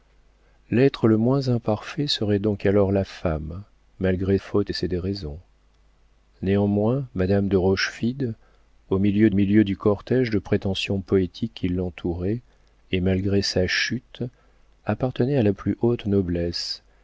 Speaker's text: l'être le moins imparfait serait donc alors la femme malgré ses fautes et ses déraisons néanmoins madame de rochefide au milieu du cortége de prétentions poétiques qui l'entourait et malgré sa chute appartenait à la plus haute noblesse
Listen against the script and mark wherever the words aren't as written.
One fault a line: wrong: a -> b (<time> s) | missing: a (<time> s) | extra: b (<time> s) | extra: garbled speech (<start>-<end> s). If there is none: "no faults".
missing: ses (4.4 s)
extra: milieu (9.3 s)